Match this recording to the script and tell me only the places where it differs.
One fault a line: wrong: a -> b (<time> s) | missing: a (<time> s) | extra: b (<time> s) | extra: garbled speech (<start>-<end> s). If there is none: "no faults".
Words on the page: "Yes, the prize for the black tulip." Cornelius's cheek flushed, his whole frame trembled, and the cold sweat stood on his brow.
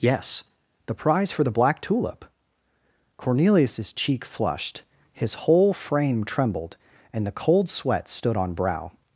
missing: his (8.6 s)